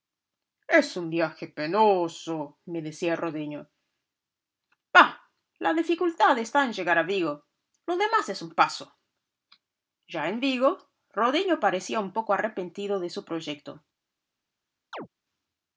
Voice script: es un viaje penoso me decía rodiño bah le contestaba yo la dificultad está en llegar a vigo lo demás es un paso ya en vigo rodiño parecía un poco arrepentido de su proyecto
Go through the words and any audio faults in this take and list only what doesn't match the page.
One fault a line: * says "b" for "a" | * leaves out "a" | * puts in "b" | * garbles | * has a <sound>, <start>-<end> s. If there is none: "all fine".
* leaves out "le contestaba yo"
* has a chirp, 14.9-15.1 s